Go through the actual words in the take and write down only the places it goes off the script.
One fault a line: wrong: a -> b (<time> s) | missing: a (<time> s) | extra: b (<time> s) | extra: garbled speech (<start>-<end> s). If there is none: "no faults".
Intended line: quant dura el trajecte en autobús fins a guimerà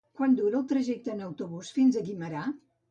no faults